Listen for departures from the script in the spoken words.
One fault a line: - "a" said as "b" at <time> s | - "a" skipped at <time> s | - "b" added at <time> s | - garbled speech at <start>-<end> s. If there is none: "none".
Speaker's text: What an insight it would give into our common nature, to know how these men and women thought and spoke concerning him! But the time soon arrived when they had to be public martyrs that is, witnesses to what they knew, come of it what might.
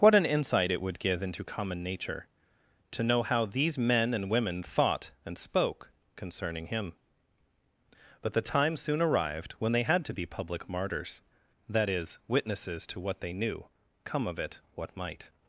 - "our" skipped at 1.4 s